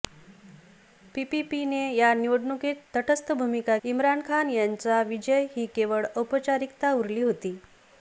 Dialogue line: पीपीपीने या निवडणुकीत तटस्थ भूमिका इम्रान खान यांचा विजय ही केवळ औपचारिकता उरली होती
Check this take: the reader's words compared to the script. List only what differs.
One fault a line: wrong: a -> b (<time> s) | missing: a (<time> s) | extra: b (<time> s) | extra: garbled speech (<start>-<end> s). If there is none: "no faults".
no faults